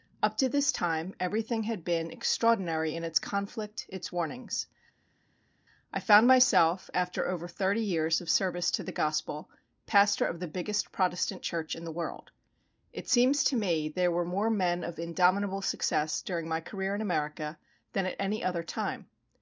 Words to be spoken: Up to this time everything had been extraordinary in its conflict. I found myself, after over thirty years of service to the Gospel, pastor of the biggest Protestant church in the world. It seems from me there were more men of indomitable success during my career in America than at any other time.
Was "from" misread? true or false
true